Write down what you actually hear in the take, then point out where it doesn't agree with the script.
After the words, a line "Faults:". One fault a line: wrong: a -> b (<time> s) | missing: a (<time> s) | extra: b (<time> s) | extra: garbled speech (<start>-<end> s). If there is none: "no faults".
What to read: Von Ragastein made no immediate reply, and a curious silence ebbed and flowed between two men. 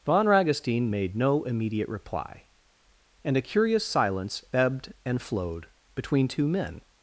Von Ragastein made no immediate reply, and a curious silence ebbed and flowed between two men.
Faults:
no faults